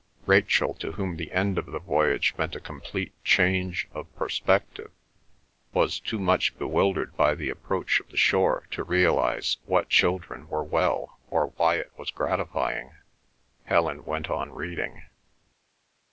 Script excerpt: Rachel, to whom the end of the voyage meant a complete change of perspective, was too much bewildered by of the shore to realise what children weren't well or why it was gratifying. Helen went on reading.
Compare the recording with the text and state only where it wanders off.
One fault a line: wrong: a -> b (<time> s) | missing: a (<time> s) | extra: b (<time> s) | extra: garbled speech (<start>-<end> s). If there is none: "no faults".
extra: the approach (7.3 s)
wrong: weren't -> were (10.5 s)